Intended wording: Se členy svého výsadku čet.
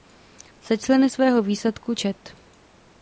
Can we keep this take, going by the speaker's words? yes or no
yes